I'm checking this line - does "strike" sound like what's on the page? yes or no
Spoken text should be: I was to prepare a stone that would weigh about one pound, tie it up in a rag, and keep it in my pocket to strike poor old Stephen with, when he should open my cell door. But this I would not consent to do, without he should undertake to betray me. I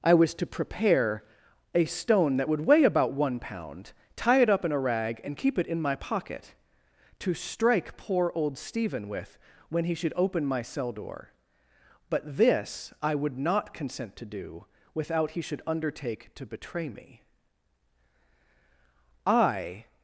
yes